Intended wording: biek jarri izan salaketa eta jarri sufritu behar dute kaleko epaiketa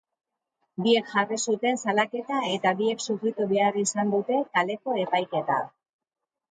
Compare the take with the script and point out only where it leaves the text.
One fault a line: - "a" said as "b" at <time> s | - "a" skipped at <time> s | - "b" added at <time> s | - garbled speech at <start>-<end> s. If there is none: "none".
- "izan" said as "zuten" at 1.5 s
- "jarri" said as "biek" at 2.8 s
- "izan" added at 3.9 s